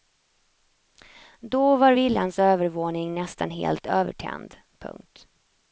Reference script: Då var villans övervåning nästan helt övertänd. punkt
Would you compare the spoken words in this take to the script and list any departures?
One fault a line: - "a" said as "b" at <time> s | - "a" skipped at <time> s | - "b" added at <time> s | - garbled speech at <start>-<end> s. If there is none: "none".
none